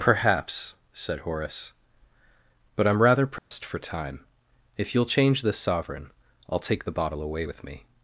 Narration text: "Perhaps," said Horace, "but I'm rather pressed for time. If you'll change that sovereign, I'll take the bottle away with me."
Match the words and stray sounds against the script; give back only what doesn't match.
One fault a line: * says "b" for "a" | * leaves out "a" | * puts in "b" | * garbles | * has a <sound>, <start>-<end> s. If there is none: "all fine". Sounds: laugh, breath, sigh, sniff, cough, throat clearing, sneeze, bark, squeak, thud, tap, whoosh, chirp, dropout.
* has a dropout, 3.4-3.5 s
* says "this" for "that"